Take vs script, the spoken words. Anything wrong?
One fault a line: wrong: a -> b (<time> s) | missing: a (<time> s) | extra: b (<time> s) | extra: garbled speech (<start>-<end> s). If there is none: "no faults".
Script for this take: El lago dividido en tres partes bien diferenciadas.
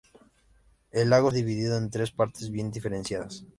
no faults